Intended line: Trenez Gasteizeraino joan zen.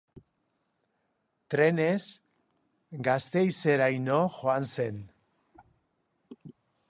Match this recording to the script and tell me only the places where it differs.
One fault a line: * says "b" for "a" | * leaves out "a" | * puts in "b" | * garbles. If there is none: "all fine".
all fine